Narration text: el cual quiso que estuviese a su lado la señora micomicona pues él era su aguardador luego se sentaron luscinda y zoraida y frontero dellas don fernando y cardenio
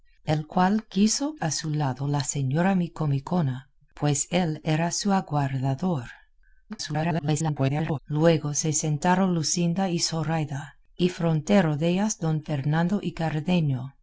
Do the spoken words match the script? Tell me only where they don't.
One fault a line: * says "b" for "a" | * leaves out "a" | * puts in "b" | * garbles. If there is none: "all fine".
* leaves out "que estuviese"
* garbles